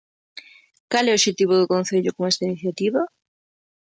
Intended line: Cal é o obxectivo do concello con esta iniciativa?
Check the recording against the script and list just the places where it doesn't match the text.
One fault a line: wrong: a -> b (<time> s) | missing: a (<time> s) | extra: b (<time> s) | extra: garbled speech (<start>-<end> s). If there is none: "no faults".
no faults